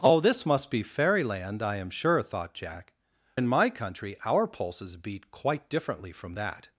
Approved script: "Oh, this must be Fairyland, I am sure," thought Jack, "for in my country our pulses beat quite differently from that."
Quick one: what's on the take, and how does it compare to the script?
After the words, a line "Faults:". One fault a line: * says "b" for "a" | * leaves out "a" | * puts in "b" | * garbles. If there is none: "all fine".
"Oh, this must be Fairyland, I am sure," thought Jack, "in my country our pulses beat quite differently from that."
Faults:
* leaves out "for"